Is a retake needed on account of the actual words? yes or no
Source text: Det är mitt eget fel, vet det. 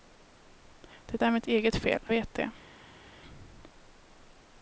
no